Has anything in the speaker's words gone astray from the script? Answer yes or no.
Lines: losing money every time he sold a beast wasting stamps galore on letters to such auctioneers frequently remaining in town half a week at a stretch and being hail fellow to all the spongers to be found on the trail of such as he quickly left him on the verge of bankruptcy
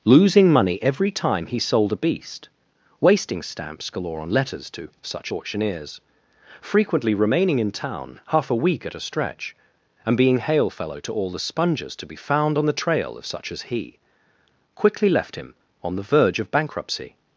no